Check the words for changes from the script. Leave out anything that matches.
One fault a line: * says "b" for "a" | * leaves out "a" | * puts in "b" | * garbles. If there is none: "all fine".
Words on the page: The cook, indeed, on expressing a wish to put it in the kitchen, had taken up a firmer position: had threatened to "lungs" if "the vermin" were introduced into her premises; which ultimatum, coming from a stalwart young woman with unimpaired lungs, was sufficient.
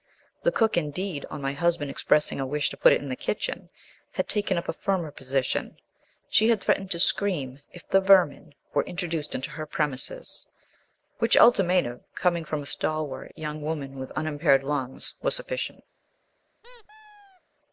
* puts in "my husband"
* puts in "she"
* says "scream" for "lungs"